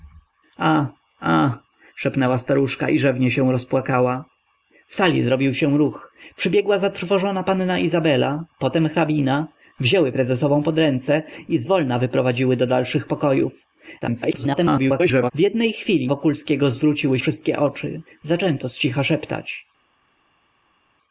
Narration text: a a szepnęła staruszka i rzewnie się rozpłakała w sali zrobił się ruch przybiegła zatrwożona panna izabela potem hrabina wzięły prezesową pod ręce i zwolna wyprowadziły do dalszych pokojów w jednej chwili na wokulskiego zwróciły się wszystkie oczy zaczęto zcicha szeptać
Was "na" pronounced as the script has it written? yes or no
no